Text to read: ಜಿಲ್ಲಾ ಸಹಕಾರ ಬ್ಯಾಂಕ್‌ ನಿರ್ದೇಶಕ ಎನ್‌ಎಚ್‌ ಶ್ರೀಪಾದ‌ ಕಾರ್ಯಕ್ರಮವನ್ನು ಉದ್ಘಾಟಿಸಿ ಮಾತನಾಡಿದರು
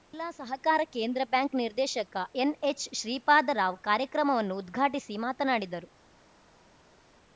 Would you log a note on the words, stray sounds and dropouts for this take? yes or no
yes